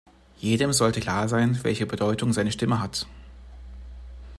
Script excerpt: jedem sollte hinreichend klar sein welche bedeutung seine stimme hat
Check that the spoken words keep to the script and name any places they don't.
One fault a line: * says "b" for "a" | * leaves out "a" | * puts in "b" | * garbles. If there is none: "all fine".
* leaves out "hinreichend"